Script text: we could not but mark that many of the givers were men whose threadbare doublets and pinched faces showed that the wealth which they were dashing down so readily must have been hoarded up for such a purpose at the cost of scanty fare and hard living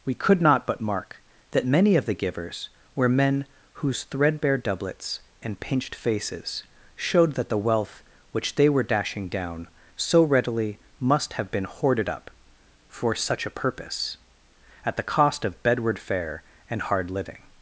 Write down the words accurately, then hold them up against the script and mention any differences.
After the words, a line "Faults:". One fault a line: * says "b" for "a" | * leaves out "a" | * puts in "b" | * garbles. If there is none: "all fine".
we could not but mark that many of the givers were men whose threadbare doublets and pinched faces showed that the wealth which they were dashing down so readily must have been hoarded up for such a purpose at the cost of bedward fare and hard living
Faults:
* says "bedward" for "scanty"